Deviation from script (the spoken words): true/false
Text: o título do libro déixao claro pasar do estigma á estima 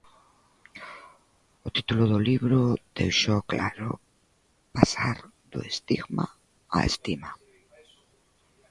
false